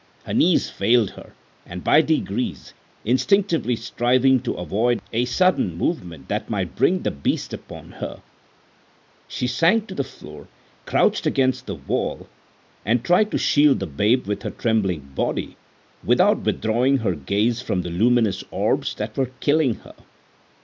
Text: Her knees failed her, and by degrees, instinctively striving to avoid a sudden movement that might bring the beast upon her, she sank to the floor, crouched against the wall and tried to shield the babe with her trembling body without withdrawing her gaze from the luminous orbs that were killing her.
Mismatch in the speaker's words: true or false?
false